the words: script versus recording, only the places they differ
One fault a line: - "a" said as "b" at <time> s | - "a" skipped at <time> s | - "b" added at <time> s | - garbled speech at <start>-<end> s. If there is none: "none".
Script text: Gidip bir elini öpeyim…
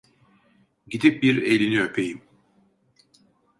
none